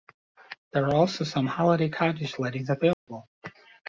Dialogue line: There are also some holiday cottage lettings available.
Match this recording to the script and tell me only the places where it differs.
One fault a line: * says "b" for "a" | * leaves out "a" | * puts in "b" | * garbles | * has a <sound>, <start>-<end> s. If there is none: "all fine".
* has a dropout, 2.9-3.1 s